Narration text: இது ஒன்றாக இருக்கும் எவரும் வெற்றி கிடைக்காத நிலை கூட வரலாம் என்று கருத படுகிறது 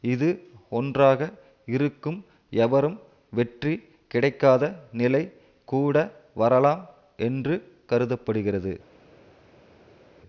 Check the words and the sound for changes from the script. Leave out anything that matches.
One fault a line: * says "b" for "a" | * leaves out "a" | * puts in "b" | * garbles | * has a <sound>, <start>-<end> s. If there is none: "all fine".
all fine